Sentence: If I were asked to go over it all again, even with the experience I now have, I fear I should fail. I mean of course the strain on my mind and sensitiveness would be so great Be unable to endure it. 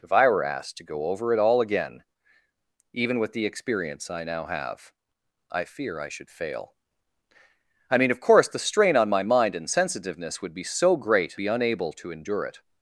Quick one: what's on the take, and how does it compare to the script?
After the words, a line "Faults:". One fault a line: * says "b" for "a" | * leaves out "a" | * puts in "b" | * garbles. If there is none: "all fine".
If I were asked to go over it all again, even with the experience I now have, I fear I should fail. I mean of course the strain on my mind and sensitiveness would be so great Be unable to endure it.
Faults:
all fine